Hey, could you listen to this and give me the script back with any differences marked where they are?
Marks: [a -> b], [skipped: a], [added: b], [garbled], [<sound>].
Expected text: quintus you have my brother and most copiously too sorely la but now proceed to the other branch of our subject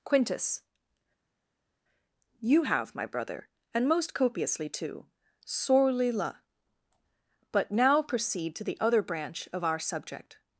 quintus you have my brother and most copiously too sorely la but now proceed to the other branch of our subject